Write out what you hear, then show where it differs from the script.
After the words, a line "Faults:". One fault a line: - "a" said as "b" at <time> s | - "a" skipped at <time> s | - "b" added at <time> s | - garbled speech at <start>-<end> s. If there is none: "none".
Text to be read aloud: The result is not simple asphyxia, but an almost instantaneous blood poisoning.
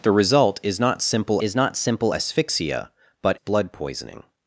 The result is not simple is not simple asphyxia, but blood poisoning.
Faults:
- "asphyxia but an almost instantaneous" said as "is not simple asphyxia but" at 1.4 s